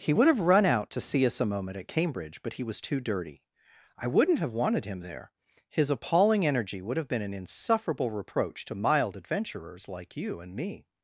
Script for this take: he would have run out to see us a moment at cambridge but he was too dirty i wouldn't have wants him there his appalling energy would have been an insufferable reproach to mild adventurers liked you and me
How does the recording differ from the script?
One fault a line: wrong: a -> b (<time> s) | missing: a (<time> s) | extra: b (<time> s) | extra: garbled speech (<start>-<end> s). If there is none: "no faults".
wrong: wants -> wanted (4.5 s)
wrong: liked -> like (9.9 s)